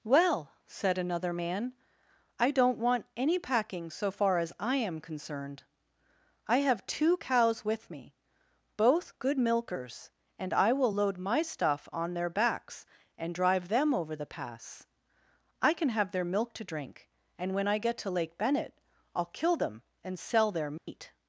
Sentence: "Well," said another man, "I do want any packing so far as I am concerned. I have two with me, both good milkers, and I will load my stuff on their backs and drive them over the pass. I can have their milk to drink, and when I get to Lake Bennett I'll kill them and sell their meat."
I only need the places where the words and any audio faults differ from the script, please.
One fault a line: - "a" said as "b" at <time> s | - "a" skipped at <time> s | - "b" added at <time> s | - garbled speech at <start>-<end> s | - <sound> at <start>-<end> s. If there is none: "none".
- "do" said as "don't" at 2.5 s
- "cows" added at 7.2 s
- dropout at 20.8-20.9 s